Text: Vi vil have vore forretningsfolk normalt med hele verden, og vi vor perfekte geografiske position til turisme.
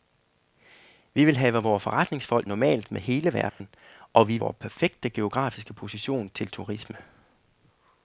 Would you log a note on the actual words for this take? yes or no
no